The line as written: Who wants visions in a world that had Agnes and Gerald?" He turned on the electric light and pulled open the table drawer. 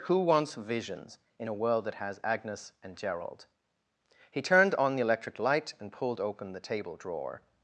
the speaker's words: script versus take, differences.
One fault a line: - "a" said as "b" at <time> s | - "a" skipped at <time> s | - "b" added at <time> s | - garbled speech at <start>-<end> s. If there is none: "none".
- "had" said as "has" at 2.0 s